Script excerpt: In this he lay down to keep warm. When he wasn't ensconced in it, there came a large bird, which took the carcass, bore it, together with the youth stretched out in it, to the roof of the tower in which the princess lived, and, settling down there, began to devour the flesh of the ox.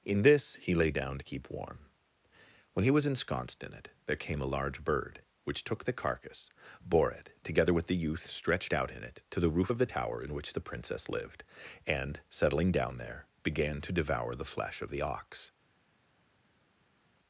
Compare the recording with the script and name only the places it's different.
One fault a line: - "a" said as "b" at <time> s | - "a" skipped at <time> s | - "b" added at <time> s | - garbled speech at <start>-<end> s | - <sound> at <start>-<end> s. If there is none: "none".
- "wasn't" said as "was" at 2.9 s